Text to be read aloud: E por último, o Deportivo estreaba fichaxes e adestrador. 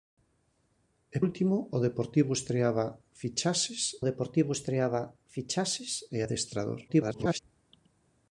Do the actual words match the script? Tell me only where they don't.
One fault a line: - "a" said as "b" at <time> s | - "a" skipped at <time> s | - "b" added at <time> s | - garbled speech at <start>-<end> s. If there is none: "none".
- "por" skipped at 1.2 s
- "Deportivo estreaba fichaxes" added at 4.1 s
- garbled speech at 6.9-7.4 s